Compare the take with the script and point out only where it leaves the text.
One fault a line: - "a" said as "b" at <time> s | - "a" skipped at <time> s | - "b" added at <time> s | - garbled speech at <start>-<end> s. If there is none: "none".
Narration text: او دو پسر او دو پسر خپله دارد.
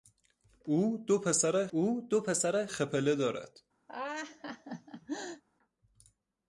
none